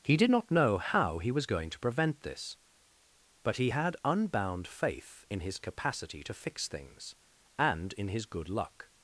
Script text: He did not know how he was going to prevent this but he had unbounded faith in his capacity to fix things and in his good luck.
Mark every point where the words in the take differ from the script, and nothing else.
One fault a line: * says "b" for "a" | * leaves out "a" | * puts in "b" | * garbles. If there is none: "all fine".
* says "unbound" for "unbounded"